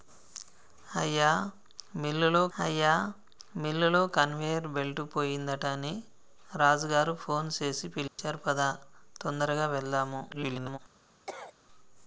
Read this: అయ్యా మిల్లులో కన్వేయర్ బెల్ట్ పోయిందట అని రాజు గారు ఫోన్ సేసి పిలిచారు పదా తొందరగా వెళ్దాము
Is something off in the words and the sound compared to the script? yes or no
yes